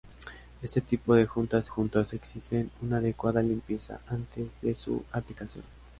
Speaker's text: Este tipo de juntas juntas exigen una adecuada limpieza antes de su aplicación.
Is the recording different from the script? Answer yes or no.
no